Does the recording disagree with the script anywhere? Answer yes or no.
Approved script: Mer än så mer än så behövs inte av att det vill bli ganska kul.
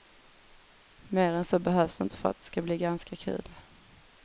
yes